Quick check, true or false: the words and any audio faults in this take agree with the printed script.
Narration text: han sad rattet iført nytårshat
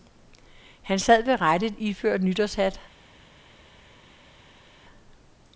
false